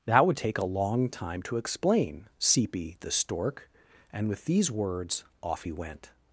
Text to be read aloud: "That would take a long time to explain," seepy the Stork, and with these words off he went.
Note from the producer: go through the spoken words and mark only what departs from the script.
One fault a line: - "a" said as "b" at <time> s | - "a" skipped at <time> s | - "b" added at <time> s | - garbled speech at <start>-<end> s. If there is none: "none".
none